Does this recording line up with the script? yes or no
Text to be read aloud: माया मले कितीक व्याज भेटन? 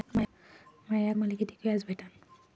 yes